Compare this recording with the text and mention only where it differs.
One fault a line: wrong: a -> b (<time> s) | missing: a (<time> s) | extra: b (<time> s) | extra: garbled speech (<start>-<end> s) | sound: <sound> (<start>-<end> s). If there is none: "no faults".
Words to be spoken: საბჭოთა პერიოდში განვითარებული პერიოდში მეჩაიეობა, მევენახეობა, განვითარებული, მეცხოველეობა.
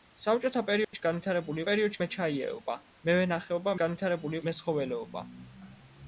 sound: dropout (0.8-0.9 s)